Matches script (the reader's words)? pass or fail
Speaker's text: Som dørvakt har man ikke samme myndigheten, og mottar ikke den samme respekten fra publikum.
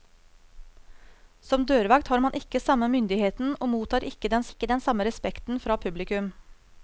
fail